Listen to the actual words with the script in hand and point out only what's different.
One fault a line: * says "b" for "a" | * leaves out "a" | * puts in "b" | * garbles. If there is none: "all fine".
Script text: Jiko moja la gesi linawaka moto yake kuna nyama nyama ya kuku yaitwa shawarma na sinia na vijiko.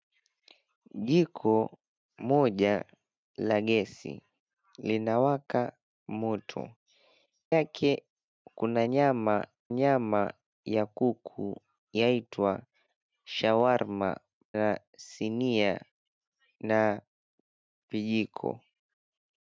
all fine